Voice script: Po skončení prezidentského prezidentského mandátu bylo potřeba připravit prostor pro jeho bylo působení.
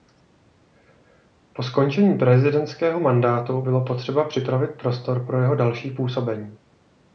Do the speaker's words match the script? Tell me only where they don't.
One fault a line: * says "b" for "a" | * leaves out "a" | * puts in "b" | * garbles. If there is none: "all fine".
* leaves out "prezidentského"
* says "další" for "bylo"